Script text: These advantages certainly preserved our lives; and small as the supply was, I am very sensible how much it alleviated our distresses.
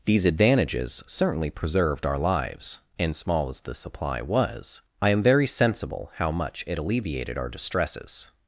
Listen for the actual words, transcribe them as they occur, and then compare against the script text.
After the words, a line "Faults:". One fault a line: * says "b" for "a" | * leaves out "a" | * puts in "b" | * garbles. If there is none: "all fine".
These advantages certainly preserved our lives; and small as the supply was, I am very sensible how much it alleviated our distresses.
Faults:
all fine